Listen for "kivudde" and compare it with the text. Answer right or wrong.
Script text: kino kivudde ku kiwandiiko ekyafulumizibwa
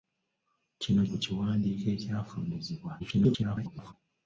wrong